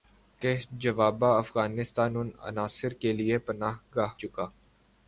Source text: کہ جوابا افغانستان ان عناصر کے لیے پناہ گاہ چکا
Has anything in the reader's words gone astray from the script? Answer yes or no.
no